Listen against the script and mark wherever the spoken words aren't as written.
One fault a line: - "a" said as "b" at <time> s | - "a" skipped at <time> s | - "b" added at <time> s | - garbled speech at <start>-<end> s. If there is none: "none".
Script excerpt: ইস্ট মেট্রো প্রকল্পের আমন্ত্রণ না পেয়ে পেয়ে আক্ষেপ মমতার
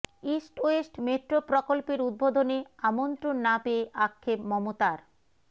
- "ওয়েস্ট" added at 0.6 s
- "উদ্বোধনে" added at 2.0 s
- "পেয়ে" skipped at 3.8 s